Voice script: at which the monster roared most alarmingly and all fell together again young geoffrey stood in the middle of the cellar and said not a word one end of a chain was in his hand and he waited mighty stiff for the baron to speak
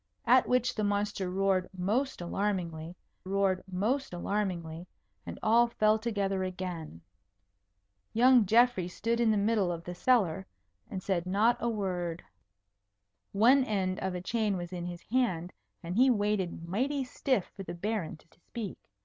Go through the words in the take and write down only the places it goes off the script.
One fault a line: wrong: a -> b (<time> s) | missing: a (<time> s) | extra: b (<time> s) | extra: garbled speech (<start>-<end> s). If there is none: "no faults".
extra: roared most alarmingly (3.2 s)
extra: to (18.3 s)